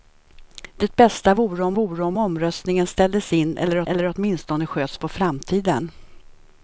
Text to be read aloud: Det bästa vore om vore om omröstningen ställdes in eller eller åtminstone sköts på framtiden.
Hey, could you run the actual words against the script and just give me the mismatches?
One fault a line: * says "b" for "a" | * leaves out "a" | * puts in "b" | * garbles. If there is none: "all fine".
all fine